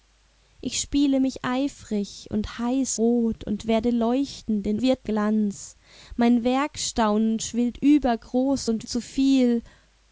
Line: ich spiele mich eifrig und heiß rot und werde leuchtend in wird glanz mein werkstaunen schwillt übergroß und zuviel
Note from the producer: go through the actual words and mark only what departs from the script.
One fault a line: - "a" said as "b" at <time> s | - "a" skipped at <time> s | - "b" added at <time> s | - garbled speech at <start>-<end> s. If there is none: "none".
none